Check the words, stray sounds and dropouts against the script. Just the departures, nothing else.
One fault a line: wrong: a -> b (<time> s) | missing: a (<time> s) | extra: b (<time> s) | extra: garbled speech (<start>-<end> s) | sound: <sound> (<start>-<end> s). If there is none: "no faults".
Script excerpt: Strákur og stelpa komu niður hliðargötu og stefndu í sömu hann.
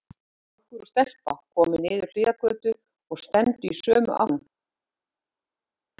no faults